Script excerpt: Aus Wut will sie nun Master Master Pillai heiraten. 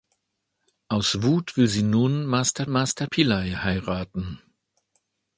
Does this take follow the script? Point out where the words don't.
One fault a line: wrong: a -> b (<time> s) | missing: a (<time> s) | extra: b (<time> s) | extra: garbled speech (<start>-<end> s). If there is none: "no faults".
no faults